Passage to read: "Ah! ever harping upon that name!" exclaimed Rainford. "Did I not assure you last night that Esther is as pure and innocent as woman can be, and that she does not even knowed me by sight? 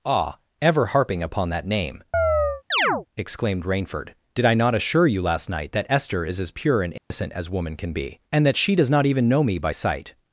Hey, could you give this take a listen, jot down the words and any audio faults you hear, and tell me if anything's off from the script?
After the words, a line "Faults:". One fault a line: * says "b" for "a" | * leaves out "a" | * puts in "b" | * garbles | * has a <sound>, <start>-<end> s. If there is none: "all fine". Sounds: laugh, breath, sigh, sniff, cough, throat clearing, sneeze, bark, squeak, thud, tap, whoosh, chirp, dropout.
"Ah! ever harping upon that name!" exclaimed Rainford. "Did I not assure you last night that Esther is as pure and innocent as woman can be, and that she does not even know me by sight?
Faults:
* has a chirp, 2.1-3.1 s
* has a dropout, 7.0-7.1 s
* says "know" for "knowed"